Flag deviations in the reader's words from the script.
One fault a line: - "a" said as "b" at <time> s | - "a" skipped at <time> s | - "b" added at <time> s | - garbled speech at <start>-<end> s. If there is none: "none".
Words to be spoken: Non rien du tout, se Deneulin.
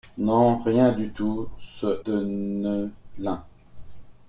none